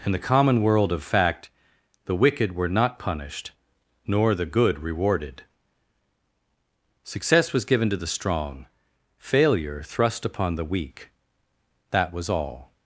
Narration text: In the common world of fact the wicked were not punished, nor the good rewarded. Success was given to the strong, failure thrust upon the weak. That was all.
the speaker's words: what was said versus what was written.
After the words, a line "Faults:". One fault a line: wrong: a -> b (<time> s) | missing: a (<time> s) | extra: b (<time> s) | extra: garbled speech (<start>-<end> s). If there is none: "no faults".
In the common world of fact the wicked were not punished, nor the good rewarded. Success was given to the strong, failure thrust upon the weak. That was all.
Faults:
no faults